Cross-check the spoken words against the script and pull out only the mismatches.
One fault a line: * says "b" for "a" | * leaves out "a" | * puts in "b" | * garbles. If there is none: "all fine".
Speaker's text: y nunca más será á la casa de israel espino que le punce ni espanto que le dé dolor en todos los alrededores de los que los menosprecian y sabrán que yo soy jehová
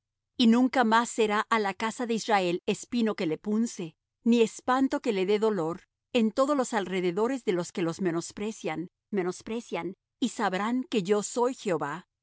* puts in "menosprecian"